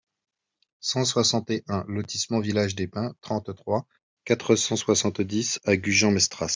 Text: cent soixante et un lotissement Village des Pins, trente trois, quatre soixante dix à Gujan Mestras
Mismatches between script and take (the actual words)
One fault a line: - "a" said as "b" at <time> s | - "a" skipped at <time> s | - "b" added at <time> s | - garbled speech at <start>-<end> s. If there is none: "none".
- "cent" added at 4.6 s